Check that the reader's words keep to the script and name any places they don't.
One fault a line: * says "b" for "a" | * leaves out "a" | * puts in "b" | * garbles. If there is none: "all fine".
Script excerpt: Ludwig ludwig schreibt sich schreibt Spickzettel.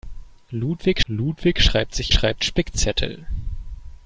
all fine